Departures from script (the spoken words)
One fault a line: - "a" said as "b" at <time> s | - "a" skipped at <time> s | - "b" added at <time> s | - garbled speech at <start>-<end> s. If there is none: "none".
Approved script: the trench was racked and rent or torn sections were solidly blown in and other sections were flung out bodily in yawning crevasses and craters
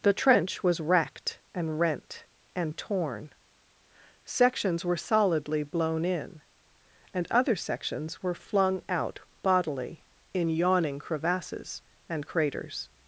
- "or" said as "and" at 2.5 s